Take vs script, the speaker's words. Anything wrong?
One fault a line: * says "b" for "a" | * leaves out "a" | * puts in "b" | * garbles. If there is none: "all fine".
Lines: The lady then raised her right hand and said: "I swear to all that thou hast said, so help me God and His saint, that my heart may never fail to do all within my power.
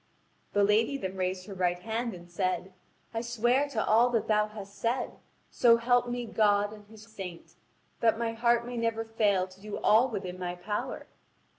all fine